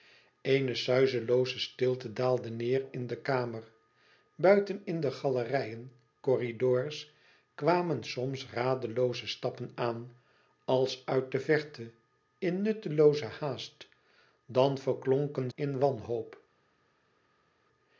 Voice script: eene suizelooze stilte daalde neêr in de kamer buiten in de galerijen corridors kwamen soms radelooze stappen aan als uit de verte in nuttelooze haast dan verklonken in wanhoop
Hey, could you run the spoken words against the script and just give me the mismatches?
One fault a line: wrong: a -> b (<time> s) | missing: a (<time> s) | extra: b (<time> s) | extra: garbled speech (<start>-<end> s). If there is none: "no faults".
no faults